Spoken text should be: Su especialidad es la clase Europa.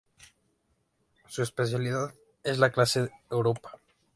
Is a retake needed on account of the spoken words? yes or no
no